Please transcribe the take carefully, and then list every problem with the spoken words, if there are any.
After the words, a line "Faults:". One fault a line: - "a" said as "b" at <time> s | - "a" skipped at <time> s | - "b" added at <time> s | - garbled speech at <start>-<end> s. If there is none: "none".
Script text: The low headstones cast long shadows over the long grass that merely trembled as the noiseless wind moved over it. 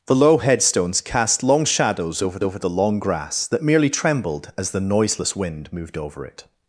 The low headstones cast long shadows over over the long grass that merely trembled as the noiseless wind moved over it.
Faults:
- "over" added at 2.4 s